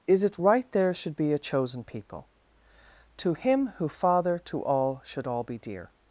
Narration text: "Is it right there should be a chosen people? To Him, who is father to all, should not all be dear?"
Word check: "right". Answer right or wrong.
right